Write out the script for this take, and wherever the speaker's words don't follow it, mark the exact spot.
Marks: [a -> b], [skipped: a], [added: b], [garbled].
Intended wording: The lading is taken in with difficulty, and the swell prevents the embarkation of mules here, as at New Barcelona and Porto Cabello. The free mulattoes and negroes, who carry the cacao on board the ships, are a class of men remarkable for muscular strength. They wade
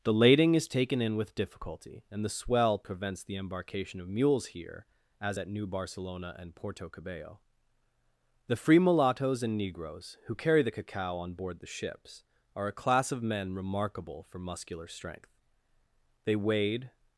The lading is taken in with difficulty, and the swell prevents the embarkation of mules here, as at New Barcelona and Porto Cabello. The free mulattoes and negroes, who carry the cacao on board the ships, are a class of men remarkable for muscular strength. They wade